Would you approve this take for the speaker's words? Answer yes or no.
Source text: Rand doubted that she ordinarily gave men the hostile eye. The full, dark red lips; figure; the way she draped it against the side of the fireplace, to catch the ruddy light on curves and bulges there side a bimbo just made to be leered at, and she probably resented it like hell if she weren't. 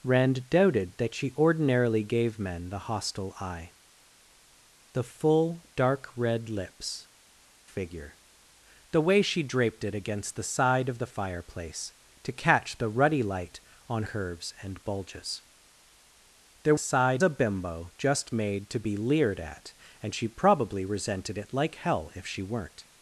yes